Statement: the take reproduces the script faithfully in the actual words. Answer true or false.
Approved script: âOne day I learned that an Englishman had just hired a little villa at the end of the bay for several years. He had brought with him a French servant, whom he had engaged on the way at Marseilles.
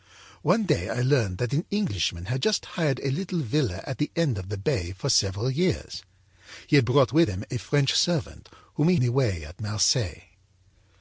false